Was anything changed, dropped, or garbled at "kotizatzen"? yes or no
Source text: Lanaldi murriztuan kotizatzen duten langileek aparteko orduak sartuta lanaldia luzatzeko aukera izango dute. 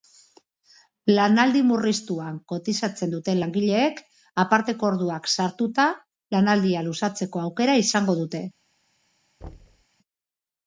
no